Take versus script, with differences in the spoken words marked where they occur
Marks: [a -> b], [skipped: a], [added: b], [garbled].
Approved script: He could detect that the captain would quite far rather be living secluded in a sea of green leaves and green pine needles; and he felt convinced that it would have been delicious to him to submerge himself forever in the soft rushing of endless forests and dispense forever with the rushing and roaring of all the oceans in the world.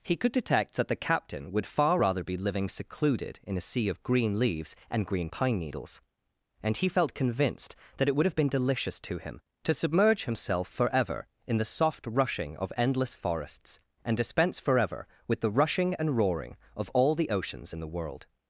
He could detect that the captain would [skipped: quite] far rather be living secluded in a sea of green leaves and green pine needles; and he felt convinced that it would have been delicious to him to submerge himself forever in the soft rushing of endless forests and dispense forever with the rushing and roaring of all the oceans in the world.